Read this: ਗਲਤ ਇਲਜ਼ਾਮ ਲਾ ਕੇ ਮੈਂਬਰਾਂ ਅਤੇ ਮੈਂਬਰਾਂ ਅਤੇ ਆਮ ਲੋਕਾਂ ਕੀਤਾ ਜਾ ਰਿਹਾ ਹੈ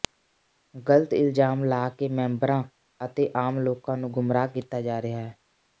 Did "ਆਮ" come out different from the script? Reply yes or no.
yes